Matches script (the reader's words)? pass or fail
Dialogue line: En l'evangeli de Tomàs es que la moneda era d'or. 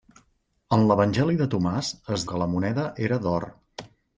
pass